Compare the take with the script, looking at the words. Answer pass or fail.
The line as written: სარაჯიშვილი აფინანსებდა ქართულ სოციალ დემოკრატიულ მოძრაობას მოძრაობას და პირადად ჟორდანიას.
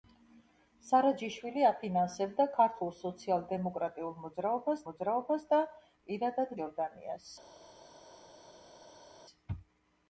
pass